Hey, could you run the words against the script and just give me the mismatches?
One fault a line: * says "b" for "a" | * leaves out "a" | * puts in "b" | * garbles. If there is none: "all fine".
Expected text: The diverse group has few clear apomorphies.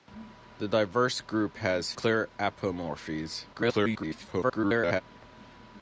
* leaves out "few"
* garbles